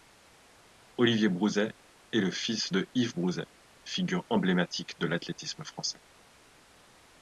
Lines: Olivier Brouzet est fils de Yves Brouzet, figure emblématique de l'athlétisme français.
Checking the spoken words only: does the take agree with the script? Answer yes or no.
no